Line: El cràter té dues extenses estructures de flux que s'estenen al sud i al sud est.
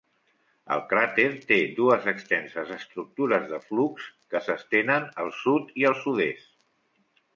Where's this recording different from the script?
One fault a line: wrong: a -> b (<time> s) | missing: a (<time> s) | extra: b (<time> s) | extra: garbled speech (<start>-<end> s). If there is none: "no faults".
no faults